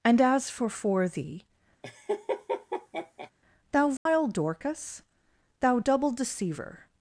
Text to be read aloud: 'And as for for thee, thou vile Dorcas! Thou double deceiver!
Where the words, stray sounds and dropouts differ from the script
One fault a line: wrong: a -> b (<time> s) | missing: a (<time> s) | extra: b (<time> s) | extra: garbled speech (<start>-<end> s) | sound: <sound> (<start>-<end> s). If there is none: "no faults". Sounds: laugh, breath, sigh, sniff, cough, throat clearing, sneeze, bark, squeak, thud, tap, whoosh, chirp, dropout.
sound: laugh (1.8-3.3 s)
sound: dropout (4.0-4.1 s)